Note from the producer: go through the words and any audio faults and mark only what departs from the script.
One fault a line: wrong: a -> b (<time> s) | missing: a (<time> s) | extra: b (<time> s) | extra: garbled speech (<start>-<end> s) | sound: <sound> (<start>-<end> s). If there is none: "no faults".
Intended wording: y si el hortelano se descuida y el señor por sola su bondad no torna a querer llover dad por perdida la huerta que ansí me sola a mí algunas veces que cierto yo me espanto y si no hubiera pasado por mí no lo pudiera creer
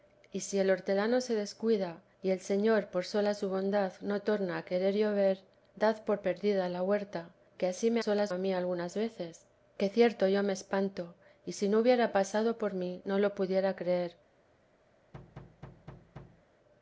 sound: thud (15.1-16.5 s)